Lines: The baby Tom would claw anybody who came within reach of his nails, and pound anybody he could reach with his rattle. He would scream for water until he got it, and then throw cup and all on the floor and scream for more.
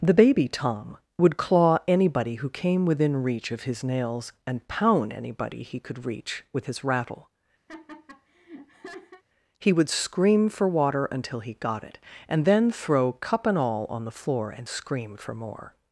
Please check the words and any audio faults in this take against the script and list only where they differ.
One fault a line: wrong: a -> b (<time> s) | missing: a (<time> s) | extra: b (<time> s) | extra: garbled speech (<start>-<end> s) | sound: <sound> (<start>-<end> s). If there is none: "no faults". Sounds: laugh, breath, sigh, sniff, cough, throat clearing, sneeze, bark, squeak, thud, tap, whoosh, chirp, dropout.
sound: laugh (7.7-9.2 s)